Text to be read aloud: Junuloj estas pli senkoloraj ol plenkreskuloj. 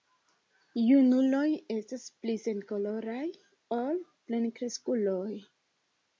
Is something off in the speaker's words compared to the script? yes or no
no